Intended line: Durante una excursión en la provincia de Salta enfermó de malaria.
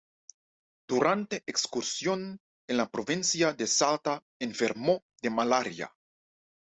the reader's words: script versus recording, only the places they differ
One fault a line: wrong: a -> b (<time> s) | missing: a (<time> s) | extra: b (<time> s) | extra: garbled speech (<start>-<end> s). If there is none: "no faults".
missing: una (1.4 s)